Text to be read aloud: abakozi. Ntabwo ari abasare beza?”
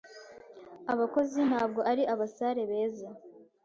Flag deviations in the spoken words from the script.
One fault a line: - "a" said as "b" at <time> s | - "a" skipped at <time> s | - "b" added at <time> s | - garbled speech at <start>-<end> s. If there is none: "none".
none